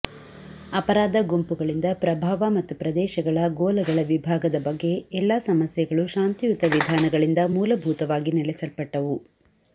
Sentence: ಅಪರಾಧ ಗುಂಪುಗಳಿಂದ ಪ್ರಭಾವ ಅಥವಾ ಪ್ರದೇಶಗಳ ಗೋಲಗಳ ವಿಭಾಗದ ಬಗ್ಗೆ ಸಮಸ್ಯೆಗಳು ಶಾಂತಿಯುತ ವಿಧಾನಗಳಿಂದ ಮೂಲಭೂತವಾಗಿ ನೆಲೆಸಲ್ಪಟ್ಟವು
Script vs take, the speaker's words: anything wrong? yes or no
yes